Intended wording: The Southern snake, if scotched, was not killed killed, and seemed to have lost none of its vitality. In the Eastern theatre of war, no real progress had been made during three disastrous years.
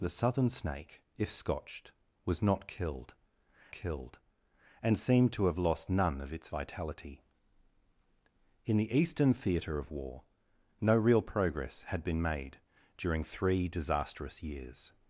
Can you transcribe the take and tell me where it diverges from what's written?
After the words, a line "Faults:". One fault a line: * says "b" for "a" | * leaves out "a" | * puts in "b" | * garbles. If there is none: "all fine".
The Southern snake, if scotched, was not killed killed, and seemed to have lost none of its vitality. In the Eastern theatre of war, no real progress had been made during three disastrous years.
Faults:
all fine